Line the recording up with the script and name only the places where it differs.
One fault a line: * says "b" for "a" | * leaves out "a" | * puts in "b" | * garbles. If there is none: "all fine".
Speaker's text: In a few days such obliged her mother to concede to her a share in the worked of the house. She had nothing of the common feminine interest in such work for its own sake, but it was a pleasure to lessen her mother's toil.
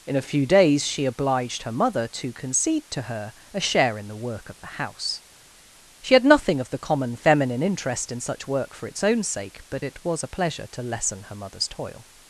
* says "she" for "such"
* says "work" for "worked"